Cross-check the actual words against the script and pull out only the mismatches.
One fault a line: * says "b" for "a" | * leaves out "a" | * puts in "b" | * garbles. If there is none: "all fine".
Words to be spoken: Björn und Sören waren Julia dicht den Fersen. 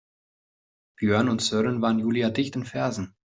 all fine